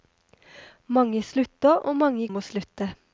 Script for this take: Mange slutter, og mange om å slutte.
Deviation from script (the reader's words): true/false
false